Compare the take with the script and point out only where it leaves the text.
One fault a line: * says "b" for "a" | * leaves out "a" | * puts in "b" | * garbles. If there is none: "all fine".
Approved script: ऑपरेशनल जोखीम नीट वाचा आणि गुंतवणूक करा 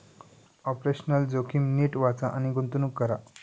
all fine